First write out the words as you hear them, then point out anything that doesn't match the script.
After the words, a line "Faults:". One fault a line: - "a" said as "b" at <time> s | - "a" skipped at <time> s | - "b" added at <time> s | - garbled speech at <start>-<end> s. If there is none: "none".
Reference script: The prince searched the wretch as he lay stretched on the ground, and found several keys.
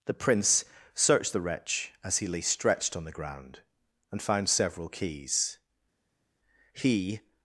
The prince searched the wretch as he lay stretched on the ground, and found several keys. He
Faults:
- "He" added at 6.7 s